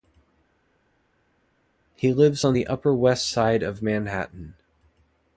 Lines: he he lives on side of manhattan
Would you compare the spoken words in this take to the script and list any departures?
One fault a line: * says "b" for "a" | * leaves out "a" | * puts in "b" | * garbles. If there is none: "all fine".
* leaves out "he"
* puts in "the upper west"